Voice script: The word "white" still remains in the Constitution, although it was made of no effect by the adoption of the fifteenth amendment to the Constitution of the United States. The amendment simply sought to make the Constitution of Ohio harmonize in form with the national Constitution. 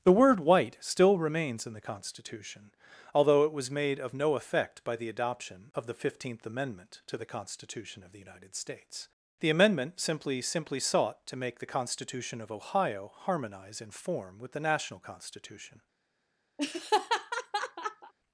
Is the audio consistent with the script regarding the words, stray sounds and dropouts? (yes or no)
no